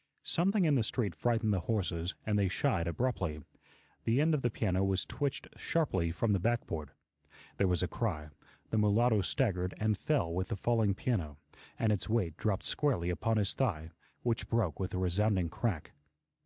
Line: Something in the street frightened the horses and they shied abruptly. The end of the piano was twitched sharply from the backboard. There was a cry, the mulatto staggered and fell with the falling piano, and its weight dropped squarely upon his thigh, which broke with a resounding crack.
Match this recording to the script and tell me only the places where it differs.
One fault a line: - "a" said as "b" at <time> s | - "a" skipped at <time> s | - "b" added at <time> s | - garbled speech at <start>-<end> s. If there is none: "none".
none